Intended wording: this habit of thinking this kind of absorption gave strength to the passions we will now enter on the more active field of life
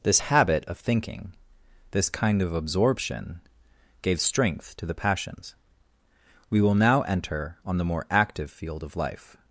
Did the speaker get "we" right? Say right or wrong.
right